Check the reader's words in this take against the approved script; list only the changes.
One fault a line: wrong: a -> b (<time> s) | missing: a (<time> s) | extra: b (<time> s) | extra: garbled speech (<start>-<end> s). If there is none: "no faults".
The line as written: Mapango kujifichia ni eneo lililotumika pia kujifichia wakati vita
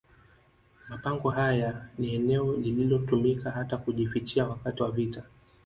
wrong: kujifichia -> haya (1.3 s)
wrong: pia -> hata (3.5 s)
extra: wa (4.8 s)